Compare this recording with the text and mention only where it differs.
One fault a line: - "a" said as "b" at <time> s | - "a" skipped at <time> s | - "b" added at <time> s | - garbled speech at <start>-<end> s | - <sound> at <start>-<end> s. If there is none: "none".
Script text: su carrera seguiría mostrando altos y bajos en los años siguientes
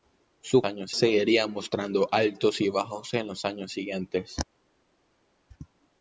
- "carrera" said as "años" at 0.6 s